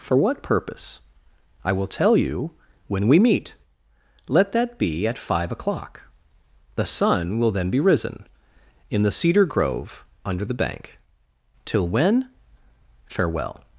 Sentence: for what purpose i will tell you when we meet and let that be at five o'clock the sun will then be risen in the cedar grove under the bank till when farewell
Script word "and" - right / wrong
wrong